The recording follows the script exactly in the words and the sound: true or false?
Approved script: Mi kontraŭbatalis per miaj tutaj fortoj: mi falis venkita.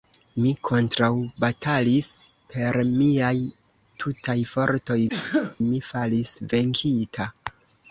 false